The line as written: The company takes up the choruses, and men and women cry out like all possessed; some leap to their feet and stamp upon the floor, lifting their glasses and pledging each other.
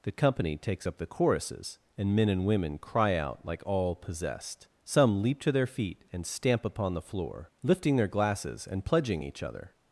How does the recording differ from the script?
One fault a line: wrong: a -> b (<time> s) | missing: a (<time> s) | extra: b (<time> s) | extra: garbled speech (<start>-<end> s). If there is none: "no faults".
no faults